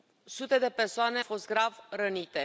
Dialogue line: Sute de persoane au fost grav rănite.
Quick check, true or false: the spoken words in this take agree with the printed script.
false